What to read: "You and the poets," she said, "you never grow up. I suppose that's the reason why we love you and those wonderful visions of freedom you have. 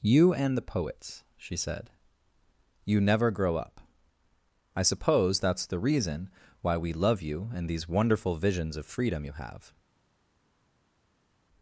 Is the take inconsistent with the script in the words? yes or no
yes